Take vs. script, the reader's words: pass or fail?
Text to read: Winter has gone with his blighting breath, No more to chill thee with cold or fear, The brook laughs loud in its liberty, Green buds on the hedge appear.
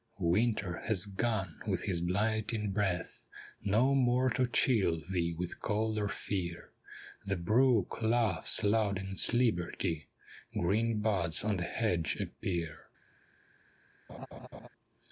pass